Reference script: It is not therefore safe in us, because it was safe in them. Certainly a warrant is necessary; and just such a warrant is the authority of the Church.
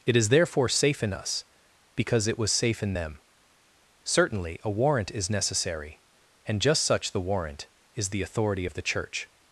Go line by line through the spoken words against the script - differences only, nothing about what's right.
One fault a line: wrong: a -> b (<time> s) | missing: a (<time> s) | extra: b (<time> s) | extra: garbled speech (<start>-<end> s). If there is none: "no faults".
missing: not (0.3 s)
wrong: a -> the (7.1 s)